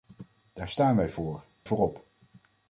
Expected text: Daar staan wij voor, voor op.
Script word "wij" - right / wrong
right